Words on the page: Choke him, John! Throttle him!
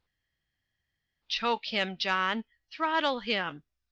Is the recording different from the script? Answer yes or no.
no